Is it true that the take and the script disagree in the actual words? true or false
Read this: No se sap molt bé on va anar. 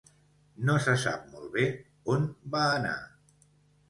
false